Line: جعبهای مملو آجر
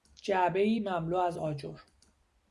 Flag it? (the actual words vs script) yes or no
yes